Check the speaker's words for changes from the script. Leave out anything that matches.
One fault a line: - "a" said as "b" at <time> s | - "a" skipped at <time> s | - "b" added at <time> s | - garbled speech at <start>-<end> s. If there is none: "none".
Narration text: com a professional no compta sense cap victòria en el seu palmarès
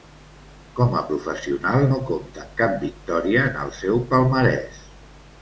- "sense" said as "amb" at 2.4 s